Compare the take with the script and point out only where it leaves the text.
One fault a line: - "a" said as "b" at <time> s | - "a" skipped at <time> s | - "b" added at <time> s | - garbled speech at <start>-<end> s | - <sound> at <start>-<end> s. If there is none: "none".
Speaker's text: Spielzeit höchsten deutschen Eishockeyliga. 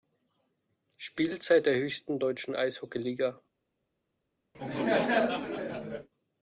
- "der" added at 1.7 s
- laugh at 4.5-6.1 s